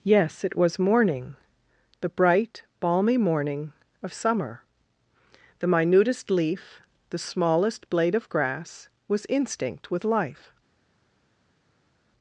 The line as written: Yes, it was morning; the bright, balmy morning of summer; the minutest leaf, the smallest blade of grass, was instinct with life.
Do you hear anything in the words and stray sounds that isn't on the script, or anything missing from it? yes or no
no